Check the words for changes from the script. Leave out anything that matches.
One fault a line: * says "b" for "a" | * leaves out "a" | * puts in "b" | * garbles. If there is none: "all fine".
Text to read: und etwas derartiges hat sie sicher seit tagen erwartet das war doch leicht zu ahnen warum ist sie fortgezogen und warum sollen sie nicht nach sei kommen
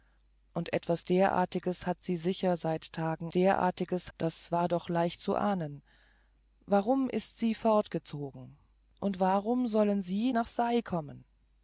* says "derartiges" for "erwartet"
* leaves out "nicht"